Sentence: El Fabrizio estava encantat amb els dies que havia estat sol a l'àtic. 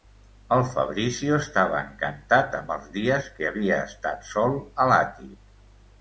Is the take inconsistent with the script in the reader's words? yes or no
no